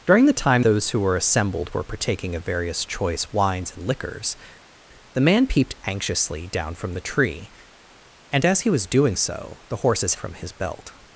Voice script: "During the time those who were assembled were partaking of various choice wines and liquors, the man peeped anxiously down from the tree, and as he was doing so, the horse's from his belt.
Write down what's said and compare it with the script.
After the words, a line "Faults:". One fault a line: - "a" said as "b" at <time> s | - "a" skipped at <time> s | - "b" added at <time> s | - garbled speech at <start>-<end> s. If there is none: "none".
"During the time those who were assembled were partaking of various choice wines and liquors, the man peeped anxiously down from the tree, and as he was doing so, the horse's from his belt.
Faults:
none